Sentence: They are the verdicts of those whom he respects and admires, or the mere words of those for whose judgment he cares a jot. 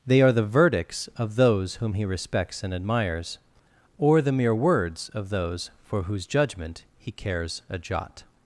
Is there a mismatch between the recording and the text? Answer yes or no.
no